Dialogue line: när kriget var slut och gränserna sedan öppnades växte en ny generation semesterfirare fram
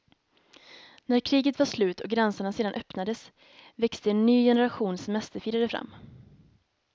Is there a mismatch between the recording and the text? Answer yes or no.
no